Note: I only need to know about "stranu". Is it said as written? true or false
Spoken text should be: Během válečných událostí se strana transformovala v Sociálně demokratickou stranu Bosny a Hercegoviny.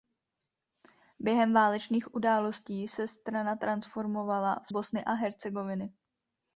false